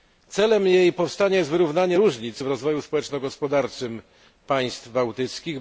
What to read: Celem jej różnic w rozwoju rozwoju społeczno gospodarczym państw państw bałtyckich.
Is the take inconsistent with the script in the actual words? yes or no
yes